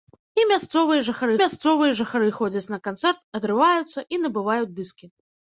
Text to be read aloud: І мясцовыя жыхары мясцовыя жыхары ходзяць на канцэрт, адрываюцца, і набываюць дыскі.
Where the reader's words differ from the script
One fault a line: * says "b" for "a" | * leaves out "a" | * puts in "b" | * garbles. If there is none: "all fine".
all fine